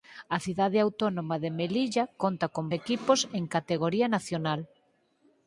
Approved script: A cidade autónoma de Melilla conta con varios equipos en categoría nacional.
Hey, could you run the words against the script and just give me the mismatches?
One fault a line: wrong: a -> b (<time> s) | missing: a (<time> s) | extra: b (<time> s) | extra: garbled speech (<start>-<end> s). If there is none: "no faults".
missing: varios (2.6 s)